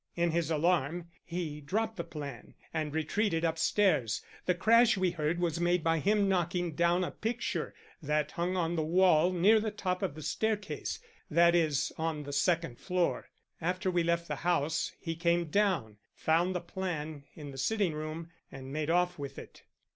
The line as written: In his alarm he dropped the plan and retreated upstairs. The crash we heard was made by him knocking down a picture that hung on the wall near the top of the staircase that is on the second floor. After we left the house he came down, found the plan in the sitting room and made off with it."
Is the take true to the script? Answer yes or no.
yes